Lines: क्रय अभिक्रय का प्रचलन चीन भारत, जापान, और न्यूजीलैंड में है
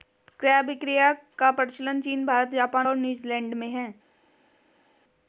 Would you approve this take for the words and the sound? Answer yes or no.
yes